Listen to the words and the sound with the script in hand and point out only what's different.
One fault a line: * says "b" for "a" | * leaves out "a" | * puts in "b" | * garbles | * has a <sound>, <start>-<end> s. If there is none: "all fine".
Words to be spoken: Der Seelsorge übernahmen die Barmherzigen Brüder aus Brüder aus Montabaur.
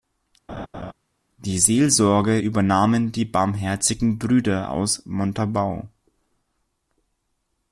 * has a laugh, 0.5-0.9 s
* says "Die" for "Der"
* leaves out "Brüder aus"